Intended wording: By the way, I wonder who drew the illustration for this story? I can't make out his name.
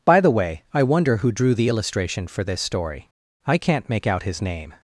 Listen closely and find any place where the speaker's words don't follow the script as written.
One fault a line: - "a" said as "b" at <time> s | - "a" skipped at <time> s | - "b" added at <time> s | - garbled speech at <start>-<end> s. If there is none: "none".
none